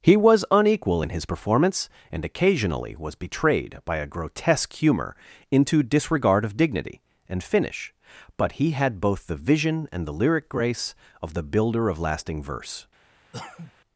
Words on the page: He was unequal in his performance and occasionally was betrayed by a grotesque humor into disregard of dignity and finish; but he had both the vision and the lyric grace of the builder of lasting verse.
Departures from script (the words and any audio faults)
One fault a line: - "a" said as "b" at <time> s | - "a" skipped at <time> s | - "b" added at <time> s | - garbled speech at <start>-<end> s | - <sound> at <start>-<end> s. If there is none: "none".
- cough at 13.3-13.7 s